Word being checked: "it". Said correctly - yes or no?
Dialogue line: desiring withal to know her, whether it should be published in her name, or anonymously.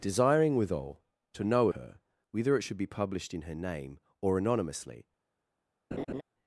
yes